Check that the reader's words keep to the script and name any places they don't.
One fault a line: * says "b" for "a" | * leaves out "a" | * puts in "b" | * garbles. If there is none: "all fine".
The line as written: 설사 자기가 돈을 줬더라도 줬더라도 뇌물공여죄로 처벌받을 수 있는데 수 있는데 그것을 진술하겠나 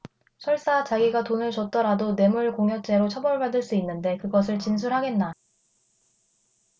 * leaves out "줬더라도"
* leaves out "수 있는데"